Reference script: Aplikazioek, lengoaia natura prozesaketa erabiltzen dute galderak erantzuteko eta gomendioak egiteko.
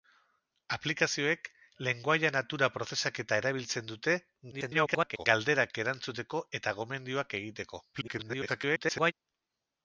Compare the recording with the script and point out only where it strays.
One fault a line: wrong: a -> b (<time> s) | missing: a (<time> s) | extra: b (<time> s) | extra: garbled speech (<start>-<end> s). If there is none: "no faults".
extra: garbled speech (4.5-5.3 s)
extra: garbled speech (7.9-9.1 s)